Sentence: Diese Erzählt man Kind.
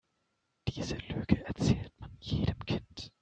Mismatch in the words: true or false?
true